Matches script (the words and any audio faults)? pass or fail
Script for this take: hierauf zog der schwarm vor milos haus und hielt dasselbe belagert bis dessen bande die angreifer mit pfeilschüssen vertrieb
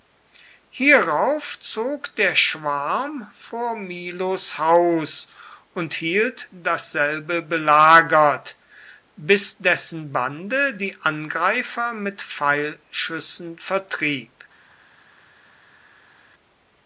pass